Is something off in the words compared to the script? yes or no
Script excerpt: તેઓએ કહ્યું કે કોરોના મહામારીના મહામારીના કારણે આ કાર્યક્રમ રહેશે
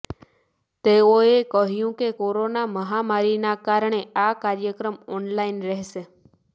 yes